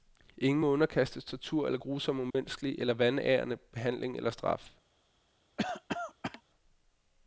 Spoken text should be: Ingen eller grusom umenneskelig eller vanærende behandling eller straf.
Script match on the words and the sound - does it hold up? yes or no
no